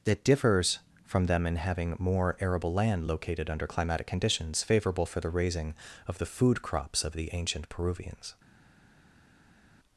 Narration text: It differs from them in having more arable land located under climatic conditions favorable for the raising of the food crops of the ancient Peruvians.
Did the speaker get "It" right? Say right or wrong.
wrong